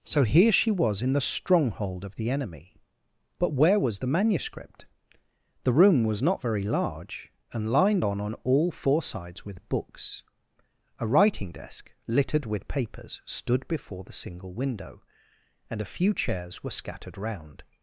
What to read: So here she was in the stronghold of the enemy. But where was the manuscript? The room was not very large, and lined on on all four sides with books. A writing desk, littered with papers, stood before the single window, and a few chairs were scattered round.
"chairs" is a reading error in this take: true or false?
false